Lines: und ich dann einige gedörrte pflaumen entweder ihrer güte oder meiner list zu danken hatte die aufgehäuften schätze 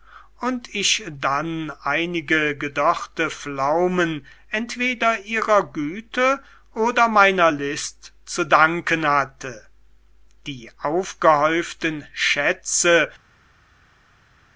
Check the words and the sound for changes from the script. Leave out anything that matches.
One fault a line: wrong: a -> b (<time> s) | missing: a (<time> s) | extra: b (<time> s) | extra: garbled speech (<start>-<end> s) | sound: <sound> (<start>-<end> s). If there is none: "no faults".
no faults